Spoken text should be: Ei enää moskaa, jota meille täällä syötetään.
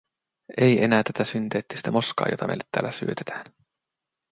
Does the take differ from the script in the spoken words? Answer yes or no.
yes